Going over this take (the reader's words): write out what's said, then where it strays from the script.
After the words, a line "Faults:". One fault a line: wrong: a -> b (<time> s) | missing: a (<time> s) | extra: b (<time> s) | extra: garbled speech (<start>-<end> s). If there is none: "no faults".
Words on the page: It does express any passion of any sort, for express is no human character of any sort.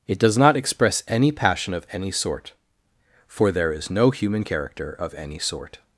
It does not express any passion of any sort, for there is no human character of any sort.
Faults:
extra: not (0.4 s)
wrong: express -> there (3.5 s)